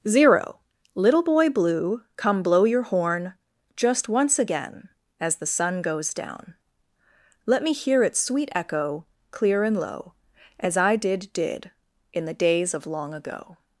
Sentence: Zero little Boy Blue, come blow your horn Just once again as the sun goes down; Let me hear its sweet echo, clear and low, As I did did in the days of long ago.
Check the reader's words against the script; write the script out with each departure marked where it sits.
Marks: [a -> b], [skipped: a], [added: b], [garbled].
Zero little Boy Blue, come blow your horn Just once again as the sun goes down; Let me hear its sweet echo, clear and low, As I did did in the days of long ago.